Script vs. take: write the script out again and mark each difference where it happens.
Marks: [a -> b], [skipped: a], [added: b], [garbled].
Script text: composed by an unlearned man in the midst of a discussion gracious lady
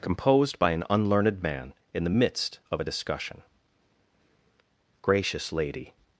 composed by an unlearned man in the midst of a discussion gracious lady